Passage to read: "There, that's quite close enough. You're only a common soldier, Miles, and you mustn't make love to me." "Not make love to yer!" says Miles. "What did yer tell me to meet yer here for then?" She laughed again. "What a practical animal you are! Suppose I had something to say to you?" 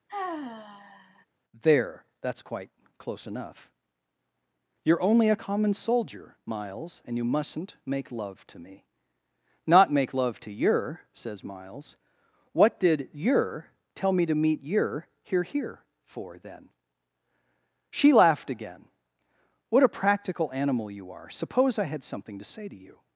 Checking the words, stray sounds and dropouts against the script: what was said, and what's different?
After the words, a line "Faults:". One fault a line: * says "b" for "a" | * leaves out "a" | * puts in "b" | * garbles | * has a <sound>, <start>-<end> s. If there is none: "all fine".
"There, that's quite close enough. You're only a common soldier, Miles, and you mustn't make love to me." "Not make love to yer!" says Miles. "What did yer tell me to meet yer here here for then?" She laughed again. "What a practical animal you are! Suppose I had something to say to you?"
Faults:
* has a sigh, 0.1-1.3 s
* puts in "here"